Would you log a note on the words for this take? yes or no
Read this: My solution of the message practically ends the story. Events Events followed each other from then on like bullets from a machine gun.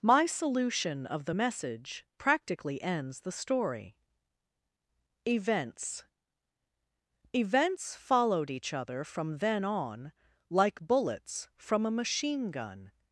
no